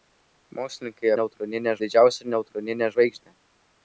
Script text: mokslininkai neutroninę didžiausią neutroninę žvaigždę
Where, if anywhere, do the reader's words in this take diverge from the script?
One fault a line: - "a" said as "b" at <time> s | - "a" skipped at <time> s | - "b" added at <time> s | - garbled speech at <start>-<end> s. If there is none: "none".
none